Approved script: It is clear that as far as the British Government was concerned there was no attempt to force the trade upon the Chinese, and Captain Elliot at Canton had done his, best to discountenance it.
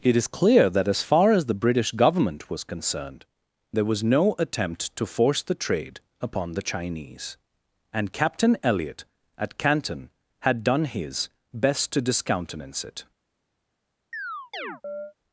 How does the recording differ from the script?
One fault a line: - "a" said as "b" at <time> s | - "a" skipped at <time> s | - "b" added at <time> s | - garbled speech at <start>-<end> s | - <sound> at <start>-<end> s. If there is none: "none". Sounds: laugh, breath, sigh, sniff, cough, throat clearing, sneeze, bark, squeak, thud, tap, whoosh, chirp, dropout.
- chirp at 14.1-15.1 s